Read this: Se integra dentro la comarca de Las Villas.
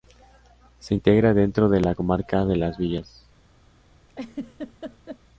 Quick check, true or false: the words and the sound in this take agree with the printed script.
false